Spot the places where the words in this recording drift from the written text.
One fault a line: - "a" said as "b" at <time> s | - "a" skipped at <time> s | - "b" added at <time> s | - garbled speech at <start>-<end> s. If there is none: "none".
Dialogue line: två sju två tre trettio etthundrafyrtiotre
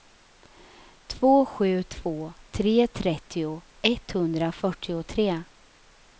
none